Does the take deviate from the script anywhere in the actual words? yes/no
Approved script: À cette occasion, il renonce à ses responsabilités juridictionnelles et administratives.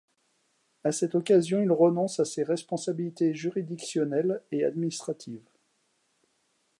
no